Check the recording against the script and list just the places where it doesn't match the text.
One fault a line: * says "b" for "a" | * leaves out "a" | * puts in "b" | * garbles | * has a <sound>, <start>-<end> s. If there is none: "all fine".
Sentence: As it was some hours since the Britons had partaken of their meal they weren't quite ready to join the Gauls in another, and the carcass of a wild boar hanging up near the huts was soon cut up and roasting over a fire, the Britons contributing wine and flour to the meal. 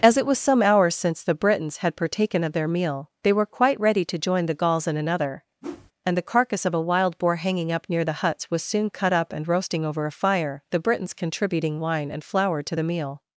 * says "were" for "weren't"
* has a whoosh, 5.6-5.9 s